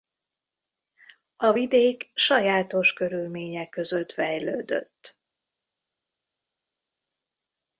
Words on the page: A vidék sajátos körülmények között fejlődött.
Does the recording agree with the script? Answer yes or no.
yes